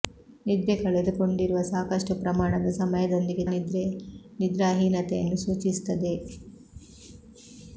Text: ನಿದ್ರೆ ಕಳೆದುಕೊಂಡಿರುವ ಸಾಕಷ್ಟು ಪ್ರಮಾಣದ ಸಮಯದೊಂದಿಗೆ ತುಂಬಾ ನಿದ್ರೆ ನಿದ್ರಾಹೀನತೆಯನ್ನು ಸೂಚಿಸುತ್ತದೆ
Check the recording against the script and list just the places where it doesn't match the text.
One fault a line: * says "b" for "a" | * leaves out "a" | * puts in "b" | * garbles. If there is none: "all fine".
* leaves out "ತುಂಬಾ"